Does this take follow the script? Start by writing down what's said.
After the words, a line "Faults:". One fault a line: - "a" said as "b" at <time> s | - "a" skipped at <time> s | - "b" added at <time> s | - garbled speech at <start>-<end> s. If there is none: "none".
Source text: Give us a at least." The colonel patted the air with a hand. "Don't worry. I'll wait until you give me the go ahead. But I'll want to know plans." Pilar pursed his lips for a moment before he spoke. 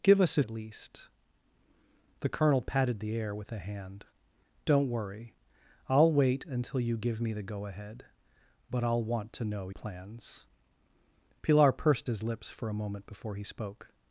Give us a at least." The colonel patted the air with a hand. "Don't worry. I'll wait until you give me the go ahead. But I'll want to know plans." Pilar pursed his lips for a moment before he spoke.
Faults:
none